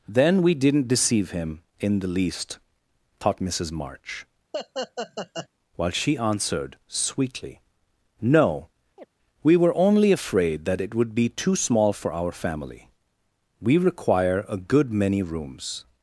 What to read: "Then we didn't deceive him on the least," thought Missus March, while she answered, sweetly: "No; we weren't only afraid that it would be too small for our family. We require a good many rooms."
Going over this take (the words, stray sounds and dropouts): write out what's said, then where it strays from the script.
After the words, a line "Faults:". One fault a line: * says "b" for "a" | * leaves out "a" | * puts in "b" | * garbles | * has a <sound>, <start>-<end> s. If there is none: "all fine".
"Then we didn't deceive him in the least," thought Missus March, while she answered, sweetly: "No; we were only afraid that it would be too small for our family. We require a good many rooms."
Faults:
* says "in" for "on"
* has a laugh, 4.5-5.5 s
* has a chirp, 9.0-9.1 s
* says "were" for "weren't"